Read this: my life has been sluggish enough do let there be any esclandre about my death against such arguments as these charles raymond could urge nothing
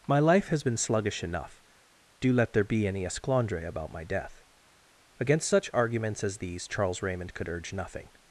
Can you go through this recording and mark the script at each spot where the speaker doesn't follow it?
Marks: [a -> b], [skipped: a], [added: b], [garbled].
my life has been sluggish enough do let there be any esclandre about my death against such arguments as these charles raymond could urge nothing